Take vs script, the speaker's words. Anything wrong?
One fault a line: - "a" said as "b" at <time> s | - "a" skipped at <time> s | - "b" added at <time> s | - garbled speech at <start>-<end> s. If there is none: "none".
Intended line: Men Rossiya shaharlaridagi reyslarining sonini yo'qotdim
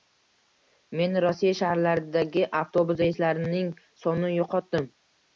- "avtobus" added at 2.6 s